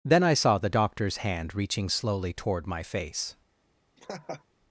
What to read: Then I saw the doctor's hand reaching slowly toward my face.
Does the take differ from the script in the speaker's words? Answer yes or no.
no